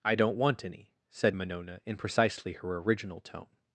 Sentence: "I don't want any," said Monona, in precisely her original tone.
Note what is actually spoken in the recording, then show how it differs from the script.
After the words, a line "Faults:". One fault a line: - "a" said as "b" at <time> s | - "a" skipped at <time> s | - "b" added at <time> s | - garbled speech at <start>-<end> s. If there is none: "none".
"I don't want any," said Monona, in precisely her original tone.
Faults:
none